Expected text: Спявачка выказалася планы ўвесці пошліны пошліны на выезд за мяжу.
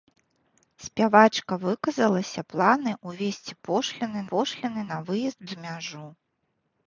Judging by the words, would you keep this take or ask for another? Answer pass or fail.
pass